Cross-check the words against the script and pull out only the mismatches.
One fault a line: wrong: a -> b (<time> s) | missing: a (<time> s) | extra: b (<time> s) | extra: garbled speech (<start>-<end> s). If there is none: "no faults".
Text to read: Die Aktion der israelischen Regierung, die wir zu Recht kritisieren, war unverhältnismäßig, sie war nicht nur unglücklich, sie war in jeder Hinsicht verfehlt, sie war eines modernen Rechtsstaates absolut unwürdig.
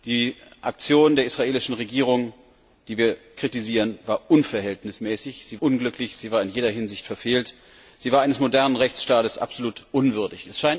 missing: zu Recht (3.2 s)
missing: war nicht nur (5.6 s)